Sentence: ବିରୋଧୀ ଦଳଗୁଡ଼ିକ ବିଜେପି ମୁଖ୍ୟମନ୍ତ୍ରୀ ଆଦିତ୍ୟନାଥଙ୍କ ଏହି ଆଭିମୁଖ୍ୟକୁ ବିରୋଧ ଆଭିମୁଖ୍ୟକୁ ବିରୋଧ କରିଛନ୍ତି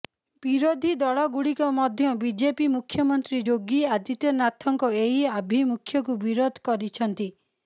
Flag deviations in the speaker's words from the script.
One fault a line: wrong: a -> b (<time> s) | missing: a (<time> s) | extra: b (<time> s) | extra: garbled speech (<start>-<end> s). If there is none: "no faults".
extra: ମଧ୍ୟ (1.8 s)
extra: ଯୋଗୀ (3.5 s)
missing: ଆଭିମୁଖ୍ୟକୁ ବିରୋଧ (6.7 s)